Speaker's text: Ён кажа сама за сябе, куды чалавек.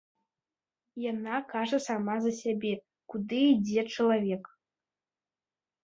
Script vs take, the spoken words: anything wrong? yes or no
yes